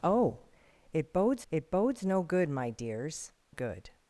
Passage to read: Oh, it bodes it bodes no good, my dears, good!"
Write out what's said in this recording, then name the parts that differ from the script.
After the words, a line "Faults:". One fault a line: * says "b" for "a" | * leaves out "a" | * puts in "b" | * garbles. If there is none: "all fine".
Oh, it bodes it bodes no good, my dears, good!"
Faults:
all fine